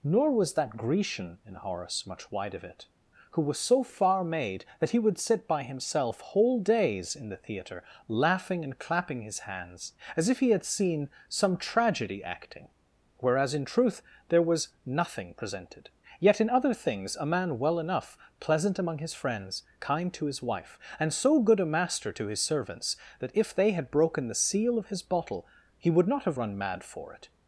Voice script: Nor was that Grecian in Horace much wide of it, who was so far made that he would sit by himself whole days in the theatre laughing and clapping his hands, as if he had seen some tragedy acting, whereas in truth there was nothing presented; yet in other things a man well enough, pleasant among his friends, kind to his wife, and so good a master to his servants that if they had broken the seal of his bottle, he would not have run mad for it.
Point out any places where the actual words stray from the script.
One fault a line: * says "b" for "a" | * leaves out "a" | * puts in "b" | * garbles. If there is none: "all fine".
all fine